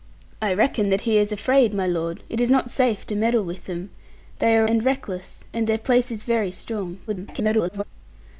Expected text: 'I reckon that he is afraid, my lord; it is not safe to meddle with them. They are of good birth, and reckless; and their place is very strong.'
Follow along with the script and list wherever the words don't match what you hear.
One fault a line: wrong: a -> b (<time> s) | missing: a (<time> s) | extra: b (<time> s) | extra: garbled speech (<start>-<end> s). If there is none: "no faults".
missing: of good birth (4.7 s)
extra: garbled speech (7.1-7.8 s)